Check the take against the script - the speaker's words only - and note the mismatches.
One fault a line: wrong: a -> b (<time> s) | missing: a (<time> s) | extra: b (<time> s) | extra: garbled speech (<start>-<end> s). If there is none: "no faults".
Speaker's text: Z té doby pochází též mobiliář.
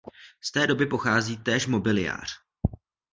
no faults